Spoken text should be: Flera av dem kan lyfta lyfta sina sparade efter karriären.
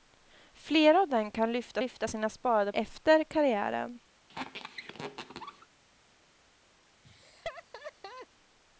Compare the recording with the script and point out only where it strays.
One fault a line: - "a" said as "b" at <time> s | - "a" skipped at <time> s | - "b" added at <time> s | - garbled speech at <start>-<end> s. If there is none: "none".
none